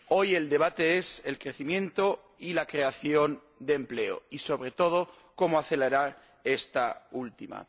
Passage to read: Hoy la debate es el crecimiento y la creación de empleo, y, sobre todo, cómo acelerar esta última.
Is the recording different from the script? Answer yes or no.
yes